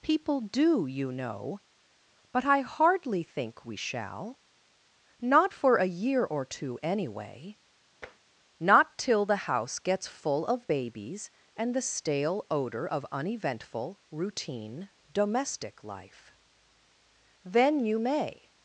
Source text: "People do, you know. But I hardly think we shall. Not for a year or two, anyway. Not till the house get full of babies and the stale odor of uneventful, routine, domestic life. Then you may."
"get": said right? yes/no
no